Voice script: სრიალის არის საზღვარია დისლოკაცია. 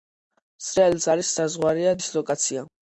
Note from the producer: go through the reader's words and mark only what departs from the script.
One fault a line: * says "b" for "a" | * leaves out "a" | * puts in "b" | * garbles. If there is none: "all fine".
all fine